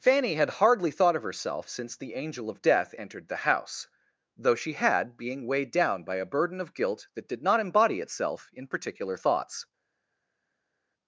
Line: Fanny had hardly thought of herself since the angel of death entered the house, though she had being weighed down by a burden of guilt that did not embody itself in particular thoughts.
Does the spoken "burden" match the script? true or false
true